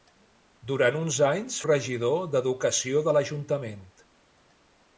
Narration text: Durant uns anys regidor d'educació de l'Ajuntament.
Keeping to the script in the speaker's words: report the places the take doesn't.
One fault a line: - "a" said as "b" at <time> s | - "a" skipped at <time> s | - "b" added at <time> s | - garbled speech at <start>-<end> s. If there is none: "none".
none